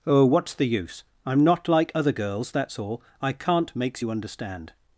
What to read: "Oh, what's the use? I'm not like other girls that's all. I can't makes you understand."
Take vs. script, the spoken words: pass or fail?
pass